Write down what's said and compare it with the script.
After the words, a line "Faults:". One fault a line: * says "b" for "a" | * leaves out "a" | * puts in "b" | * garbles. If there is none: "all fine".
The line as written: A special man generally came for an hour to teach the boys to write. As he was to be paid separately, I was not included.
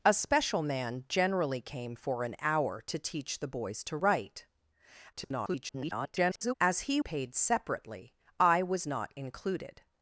A special man generally came for an hour to teach the boys to write. [garbled] As he paid separately, I was not included.
Faults:
* garbles
* leaves out "was to be"